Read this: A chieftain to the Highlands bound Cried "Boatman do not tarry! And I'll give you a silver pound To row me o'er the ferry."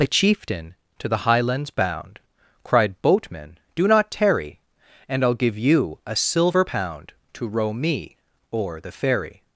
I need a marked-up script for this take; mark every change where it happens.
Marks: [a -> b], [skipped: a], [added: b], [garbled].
A chieftain to the Highlands bound Cried "Boatman do not tarry! And I'll give you a silver pound To row me o'er the ferry."